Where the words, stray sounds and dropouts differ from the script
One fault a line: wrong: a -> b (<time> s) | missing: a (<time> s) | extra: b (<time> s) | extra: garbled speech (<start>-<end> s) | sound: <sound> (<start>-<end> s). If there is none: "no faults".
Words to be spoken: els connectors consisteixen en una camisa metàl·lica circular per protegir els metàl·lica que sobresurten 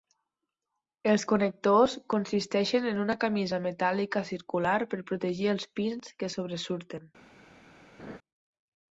wrong: metàl·lica -> pins (5.8 s)
sound: laugh (8.0-8.2 s)